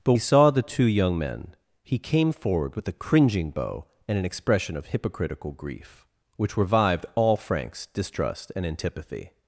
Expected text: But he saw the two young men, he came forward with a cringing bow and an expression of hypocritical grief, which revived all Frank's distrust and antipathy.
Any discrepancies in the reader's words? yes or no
no